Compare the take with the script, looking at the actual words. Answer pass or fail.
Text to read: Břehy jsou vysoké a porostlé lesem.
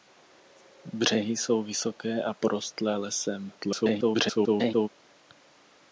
fail